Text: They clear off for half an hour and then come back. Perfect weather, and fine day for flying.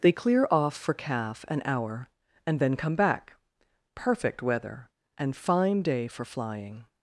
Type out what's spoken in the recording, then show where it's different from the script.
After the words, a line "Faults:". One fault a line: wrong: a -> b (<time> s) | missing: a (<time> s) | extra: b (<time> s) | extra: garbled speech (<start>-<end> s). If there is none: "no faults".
They clear off for calf an hour and then come back. Perfect weather, and fine day for flying.
Faults:
wrong: half -> calf (0.9 s)